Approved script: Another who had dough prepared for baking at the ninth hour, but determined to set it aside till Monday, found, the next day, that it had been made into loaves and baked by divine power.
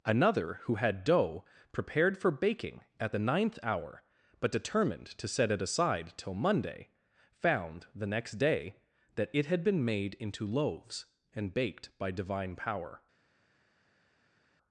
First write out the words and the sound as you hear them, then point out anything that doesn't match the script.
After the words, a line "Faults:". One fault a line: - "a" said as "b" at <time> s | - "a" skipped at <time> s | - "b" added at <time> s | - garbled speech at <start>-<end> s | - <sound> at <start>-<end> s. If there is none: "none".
Another who had dough prepared for baking at the ninth hour, but determined to set it aside till Monday, found, the next day, that it had been made into loaves and baked by divine power.
Faults:
none